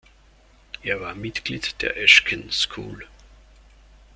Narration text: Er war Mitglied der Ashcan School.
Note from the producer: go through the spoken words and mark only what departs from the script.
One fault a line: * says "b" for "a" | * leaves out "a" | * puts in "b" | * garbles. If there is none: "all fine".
all fine